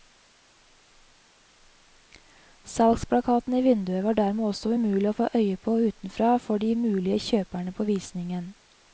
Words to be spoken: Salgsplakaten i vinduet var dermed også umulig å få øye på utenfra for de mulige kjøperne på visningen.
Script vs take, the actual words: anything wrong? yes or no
no